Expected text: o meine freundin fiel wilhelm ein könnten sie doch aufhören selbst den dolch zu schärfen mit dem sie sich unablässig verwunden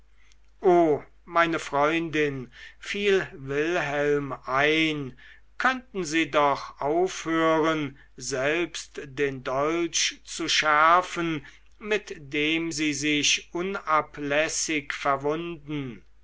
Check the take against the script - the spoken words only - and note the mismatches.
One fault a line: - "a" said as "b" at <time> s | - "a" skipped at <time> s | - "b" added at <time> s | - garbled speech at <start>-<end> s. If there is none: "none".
none